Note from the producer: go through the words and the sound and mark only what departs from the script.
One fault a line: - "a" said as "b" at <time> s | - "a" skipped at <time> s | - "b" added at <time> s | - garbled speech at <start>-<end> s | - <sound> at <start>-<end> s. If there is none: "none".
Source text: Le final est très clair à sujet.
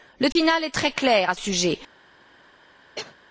- dropout at 0.3-0.4 s
- cough at 3.0-3.2 s